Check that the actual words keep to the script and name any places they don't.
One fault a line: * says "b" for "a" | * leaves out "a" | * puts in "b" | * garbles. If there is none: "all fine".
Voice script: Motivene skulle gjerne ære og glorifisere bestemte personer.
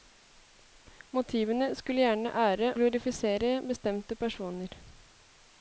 * leaves out "og"